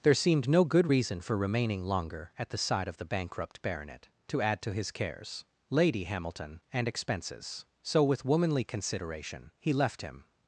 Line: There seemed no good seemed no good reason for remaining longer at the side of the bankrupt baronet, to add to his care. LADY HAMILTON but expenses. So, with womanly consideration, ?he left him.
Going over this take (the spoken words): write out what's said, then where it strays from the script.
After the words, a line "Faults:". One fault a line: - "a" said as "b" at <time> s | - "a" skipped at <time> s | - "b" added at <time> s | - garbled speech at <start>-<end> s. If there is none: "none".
There seemed no good reason for remaining longer at the side of the bankrupt baronet, to add to his cares. LADY HAMILTON and expenses. So, with womanly consideration, ?he left him.
Faults:
- "seemed no good" skipped at 0.9 s
- "care" said as "cares" at 4.9 s
- "but" said as "and" at 6.7 s